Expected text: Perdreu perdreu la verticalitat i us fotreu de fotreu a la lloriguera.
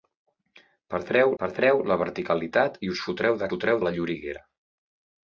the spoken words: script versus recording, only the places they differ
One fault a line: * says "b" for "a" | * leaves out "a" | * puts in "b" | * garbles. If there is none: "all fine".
all fine